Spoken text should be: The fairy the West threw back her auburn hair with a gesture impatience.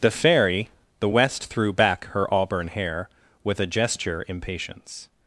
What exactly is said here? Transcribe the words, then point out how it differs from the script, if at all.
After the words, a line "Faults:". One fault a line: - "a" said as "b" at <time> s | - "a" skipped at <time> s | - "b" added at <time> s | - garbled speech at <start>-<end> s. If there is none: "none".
The fairy the West threw back her auburn hair with a gesture impatience.
Faults:
none